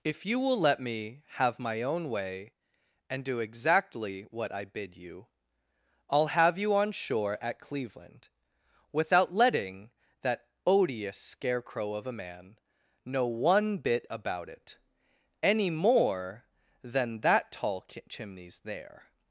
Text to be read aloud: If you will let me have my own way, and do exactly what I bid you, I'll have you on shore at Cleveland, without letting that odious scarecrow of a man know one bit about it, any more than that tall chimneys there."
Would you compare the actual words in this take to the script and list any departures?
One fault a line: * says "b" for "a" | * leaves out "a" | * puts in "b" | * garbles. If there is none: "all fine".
all fine